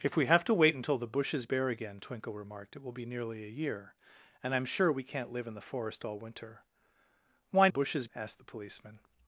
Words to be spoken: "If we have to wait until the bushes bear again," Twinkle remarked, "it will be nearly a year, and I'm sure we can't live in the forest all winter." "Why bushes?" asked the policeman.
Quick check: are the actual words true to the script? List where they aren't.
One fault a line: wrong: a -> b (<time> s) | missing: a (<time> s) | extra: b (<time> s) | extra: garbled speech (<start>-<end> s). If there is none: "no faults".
no faults